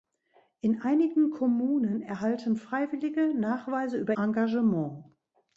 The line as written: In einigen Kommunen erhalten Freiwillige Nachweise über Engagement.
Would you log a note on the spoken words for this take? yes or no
no